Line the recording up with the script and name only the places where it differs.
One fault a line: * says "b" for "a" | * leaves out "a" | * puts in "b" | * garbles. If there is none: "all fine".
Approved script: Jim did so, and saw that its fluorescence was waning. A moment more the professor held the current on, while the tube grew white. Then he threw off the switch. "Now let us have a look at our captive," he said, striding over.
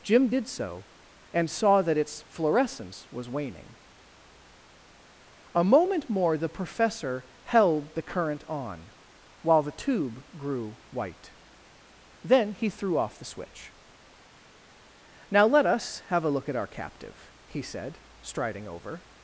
all fine